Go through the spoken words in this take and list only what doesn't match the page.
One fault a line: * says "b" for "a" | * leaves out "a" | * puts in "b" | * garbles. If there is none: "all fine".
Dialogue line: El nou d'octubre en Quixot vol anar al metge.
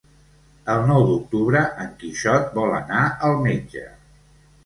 all fine